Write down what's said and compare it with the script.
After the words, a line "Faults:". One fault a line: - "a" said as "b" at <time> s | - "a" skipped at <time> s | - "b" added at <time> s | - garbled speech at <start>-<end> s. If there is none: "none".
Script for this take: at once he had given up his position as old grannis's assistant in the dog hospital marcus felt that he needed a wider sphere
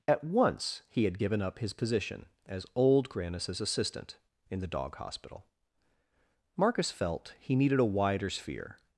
at once he had given up his position as old grannis's assistant in the dog hospital marcus felt he needed a wider sphere
Faults:
- "that" skipped at 7.3 s